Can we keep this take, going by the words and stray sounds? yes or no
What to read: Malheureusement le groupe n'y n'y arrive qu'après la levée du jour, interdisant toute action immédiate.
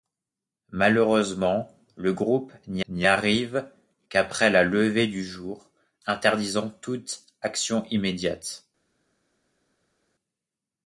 yes